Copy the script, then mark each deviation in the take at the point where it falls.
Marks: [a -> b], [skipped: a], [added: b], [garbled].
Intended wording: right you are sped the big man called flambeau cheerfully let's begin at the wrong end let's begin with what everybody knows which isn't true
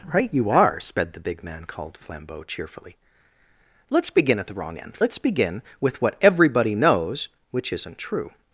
right you are sped the big man called flambeau cheerfully let's begin at the wrong end let's begin with what everybody knows which isn't true